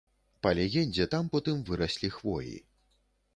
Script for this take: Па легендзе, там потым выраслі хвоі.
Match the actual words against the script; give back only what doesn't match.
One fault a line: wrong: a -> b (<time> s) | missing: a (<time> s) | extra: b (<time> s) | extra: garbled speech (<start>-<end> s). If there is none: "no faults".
no faults